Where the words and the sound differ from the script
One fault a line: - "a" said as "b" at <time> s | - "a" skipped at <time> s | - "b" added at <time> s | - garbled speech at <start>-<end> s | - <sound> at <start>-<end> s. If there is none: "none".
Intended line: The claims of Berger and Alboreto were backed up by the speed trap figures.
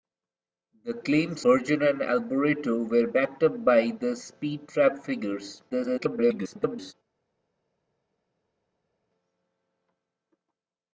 - "of" skipped at 1.4 s
- garbled speech at 5.7-6.9 s